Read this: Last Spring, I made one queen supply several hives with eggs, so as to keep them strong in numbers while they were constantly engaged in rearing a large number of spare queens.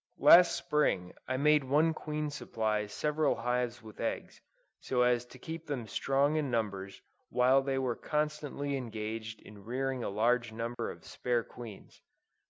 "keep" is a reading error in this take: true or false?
false